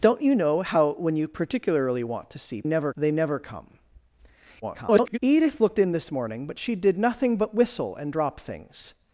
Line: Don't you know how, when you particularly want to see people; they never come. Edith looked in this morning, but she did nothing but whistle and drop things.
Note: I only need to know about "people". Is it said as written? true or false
false